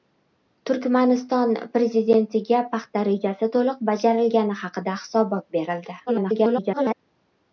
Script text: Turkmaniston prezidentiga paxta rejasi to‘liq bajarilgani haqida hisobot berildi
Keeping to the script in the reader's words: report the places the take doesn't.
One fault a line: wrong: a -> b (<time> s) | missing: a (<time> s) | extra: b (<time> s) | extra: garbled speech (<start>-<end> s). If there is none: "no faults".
extra: garbled speech (6.1-6.9 s)